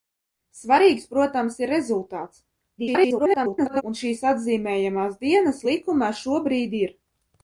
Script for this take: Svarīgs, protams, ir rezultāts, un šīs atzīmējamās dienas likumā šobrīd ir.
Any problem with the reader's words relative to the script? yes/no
yes